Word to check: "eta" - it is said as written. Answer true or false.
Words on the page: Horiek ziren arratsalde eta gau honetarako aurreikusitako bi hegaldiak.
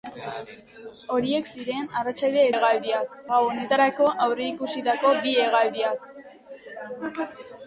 false